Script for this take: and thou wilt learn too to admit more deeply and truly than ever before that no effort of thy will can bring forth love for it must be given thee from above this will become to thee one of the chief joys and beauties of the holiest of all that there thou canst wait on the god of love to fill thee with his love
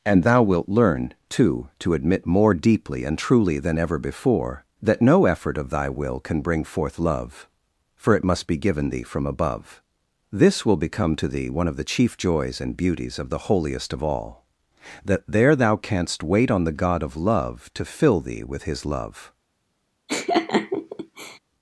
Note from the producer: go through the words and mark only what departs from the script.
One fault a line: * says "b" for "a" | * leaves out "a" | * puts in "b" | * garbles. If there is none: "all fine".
all fine